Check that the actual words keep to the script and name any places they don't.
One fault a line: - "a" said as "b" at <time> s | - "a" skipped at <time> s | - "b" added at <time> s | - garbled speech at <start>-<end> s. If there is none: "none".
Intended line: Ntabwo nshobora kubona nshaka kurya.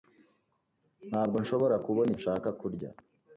none